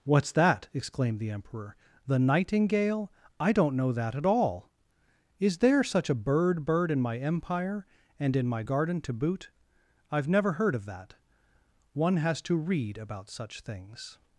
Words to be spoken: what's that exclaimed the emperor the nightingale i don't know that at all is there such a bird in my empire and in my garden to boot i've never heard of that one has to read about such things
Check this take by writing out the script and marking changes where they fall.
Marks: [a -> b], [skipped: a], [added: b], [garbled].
what's that exclaimed the emperor the nightingale i don't know that at all is there such a bird [added: bird] in my empire and in my garden to boot i've never heard of that one has to read about such things